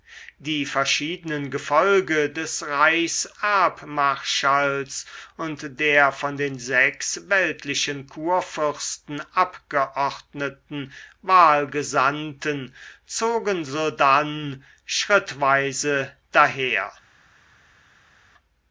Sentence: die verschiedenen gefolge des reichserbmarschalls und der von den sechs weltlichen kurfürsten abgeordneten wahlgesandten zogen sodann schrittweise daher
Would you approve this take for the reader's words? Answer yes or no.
yes